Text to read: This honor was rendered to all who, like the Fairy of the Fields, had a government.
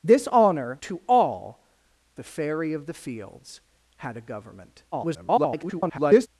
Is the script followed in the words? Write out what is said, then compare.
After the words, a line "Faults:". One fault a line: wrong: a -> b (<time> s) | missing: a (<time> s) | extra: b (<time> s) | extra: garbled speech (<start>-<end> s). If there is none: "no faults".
This honor to all the Fairy of the Fields, had a government. [garbled]
Faults:
missing: was rendered (0.8 s)
missing: who like (1.6 s)
extra: garbled speech (4.9-6.3 s)